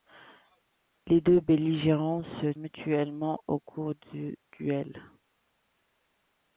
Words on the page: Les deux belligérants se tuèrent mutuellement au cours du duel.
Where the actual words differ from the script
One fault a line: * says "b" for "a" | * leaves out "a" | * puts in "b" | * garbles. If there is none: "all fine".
* leaves out "tuèrent"